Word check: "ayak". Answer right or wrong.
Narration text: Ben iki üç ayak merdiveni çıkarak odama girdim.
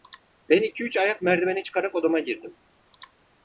right